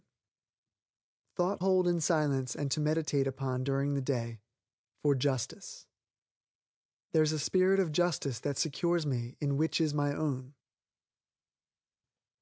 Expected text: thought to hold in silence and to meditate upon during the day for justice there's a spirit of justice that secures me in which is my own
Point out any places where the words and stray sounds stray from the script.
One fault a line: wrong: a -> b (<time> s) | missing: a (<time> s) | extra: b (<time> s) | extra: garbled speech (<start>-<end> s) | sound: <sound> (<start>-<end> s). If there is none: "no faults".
missing: to (1.6 s)